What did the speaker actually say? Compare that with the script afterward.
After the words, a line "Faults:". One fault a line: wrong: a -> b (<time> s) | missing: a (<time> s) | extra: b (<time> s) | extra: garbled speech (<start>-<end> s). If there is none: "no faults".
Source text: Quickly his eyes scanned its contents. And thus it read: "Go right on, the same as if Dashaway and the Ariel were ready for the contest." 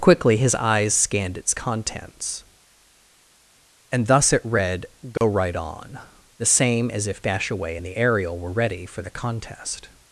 Quickly his eyes scanned its contents. And thus it read: "Go right on, the same as if Dashaway and the Ariel were ready for the contest."
Faults:
no faults